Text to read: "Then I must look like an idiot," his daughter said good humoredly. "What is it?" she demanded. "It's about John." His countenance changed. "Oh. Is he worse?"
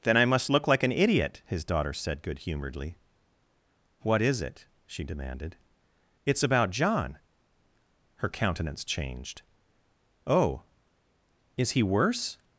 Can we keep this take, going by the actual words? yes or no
no